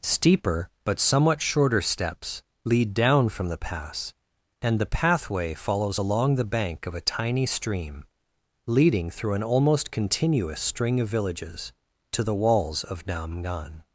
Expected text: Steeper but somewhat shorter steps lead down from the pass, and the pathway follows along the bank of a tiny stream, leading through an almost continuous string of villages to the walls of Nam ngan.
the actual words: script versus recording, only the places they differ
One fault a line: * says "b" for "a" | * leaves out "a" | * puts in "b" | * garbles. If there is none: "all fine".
all fine